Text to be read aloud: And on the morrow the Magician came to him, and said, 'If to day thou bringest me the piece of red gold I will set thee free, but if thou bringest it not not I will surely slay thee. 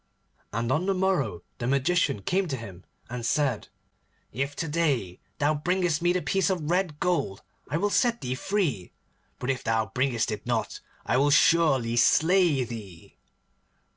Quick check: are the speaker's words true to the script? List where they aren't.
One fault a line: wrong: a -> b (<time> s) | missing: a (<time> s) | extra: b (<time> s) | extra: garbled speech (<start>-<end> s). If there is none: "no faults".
missing: not (10.8 s)